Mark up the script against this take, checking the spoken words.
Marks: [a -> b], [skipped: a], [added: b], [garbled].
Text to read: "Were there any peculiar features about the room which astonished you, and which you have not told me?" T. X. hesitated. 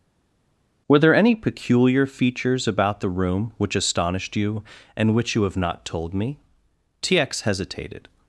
"Were there any peculiar features about the room which astonished you, and which you have not told me?" T. X. hesitated.